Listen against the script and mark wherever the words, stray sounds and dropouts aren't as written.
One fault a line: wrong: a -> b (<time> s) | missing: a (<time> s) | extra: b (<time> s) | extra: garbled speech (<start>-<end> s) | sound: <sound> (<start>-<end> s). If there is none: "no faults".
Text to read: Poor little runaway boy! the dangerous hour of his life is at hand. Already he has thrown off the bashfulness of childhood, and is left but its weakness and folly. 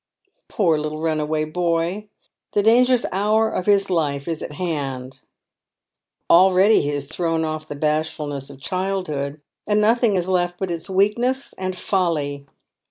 extra: nothing (9.8 s)